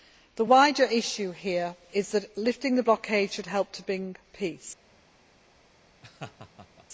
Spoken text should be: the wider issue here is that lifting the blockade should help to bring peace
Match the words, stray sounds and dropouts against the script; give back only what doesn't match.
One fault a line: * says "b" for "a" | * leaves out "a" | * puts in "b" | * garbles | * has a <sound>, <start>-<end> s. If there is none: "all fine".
* has a laugh, 6.0-6.9 s